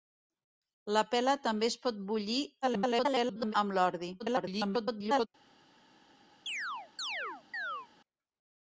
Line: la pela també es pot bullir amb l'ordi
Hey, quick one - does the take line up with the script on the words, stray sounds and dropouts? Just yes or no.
no